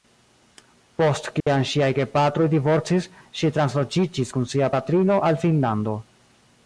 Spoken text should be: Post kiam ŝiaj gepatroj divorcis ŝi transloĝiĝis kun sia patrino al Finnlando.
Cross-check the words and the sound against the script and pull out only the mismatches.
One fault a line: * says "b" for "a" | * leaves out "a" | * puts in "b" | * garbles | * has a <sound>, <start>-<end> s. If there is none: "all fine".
* has a dropout, 1.4-1.5 s